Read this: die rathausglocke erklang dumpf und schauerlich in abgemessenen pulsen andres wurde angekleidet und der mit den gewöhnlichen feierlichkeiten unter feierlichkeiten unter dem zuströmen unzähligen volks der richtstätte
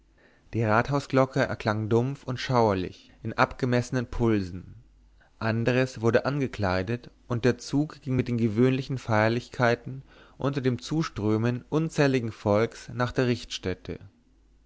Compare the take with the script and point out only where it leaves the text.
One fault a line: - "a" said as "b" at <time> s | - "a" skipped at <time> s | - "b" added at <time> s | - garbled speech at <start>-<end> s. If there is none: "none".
- "zug ging" added at 7.6 s
- "feierlichkeiten unter" skipped at 10.6 s
- "nach" added at 12.9 s